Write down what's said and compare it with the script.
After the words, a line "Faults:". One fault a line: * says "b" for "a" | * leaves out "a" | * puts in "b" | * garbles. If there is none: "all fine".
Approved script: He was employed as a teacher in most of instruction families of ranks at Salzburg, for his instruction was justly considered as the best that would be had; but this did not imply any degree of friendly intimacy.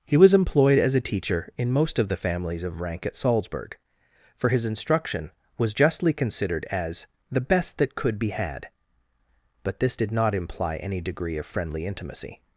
He was employed as a teacher in most of the families of rank at Salzburg, for his instruction was justly considered as the best that could be had; but this did not imply any degree of friendly intimacy.
Faults:
* says "the" for "instruction"
* says "rank" for "ranks"
* says "could" for "would"